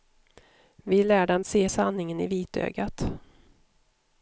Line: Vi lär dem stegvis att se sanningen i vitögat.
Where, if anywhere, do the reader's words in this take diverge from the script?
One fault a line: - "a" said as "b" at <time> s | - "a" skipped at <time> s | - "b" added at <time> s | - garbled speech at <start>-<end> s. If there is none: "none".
- "stegvis att" skipped at 1.4 s